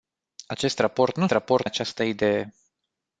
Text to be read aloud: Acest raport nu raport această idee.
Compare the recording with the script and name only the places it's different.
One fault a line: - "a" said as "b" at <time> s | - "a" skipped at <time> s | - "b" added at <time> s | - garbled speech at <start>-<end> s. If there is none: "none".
none